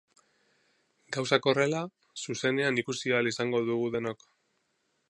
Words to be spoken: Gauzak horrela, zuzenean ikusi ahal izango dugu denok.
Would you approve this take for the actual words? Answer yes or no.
yes